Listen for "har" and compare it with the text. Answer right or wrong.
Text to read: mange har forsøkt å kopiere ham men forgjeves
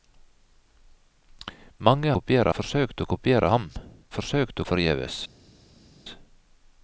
wrong